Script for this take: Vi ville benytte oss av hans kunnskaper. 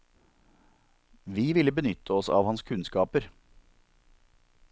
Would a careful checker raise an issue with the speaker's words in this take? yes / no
no